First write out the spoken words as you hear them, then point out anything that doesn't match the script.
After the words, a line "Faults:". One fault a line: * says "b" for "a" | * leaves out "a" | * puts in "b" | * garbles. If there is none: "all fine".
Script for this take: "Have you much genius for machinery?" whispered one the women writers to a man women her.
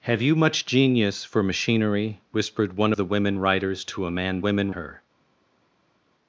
"Have you much genius for machinery?" whispered one the women writers to a man women her.
Faults:
all fine